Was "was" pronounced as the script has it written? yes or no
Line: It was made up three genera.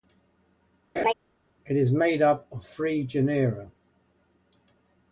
no